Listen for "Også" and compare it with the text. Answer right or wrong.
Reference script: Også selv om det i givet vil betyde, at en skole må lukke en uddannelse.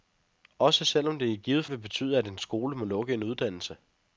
right